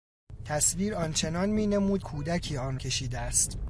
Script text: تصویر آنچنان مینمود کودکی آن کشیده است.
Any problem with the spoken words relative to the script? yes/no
no